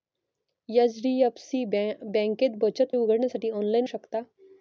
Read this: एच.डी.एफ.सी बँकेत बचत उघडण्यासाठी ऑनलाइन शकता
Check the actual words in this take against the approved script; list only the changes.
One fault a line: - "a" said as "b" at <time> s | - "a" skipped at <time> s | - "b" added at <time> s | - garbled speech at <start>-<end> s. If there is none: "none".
none